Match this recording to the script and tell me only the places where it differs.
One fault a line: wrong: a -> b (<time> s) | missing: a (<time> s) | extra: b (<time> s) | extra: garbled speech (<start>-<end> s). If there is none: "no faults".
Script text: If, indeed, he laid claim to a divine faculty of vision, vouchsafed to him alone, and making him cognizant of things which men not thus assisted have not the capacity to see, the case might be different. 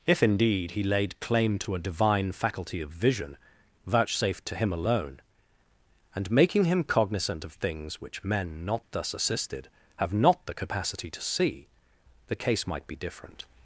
no faults